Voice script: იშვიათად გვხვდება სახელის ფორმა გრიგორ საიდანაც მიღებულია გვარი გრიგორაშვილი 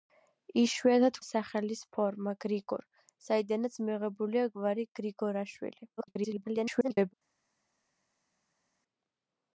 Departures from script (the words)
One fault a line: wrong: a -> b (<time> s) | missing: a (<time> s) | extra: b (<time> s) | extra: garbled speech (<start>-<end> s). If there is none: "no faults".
missing: გვხვდება (1.2 s)
extra: garbled speech (6.0-7.1 s)